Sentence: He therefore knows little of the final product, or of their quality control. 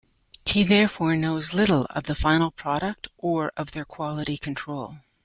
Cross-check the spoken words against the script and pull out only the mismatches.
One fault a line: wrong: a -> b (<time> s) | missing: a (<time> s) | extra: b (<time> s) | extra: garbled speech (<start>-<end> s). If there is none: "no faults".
no faults